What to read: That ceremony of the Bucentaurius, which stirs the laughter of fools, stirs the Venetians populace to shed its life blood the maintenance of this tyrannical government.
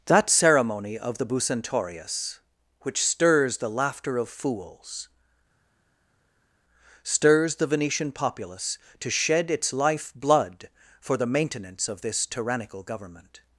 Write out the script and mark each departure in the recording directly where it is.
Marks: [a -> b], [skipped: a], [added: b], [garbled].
That ceremony of the Bucentaurius, which stirs the laughter of fools, stirs the [Venetians -> Venetian] populace to shed its life blood [added: for] the maintenance of this tyrannical government.